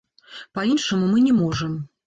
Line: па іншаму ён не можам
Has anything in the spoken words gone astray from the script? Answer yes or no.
yes